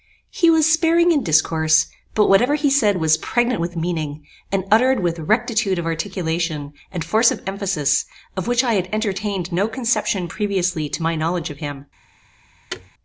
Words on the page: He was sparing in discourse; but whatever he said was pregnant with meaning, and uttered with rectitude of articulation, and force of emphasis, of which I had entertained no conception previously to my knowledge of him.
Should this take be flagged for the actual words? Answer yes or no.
no